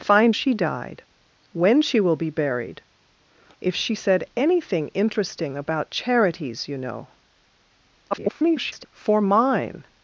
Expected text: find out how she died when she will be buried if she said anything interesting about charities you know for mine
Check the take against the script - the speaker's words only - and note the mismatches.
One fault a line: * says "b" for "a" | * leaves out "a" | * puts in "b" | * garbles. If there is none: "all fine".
* leaves out "out how"
* garbles